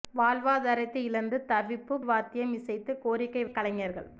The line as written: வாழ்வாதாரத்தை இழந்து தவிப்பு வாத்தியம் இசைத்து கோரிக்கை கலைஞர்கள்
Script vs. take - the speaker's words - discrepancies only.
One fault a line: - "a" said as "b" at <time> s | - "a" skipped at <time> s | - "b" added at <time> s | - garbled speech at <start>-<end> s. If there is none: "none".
none